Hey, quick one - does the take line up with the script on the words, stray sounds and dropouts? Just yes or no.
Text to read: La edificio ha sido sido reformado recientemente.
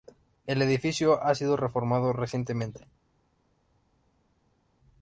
no